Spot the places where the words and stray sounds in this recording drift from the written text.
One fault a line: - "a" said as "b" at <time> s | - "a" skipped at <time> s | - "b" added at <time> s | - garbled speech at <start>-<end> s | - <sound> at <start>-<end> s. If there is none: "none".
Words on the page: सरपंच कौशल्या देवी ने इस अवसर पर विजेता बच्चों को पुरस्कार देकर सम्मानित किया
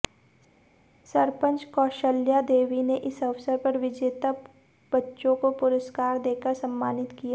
none